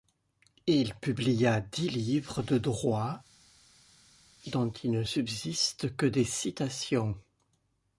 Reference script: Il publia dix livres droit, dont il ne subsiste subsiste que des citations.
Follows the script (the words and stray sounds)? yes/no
no